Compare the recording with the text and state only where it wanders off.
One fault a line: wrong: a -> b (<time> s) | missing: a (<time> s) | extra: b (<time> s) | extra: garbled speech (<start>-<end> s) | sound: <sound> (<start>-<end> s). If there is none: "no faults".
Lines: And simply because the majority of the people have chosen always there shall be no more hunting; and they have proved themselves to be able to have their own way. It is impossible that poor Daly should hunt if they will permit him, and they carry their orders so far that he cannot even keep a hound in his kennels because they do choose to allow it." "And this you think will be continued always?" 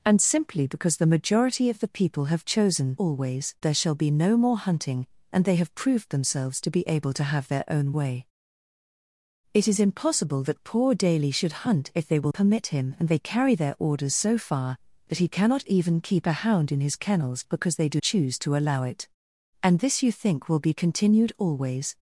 no faults